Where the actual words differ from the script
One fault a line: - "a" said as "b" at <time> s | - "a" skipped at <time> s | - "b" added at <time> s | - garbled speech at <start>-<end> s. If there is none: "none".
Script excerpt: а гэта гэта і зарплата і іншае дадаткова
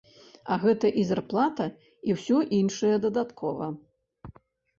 - "гэта" skipped at 0.9 s
- "ўсё" added at 2.2 s